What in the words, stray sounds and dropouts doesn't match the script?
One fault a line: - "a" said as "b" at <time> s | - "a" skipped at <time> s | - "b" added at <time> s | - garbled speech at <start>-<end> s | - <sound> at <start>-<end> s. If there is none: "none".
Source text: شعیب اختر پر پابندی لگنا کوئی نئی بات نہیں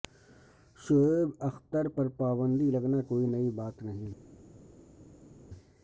none